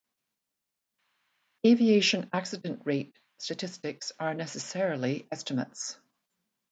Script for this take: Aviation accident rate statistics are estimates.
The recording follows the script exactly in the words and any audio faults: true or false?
false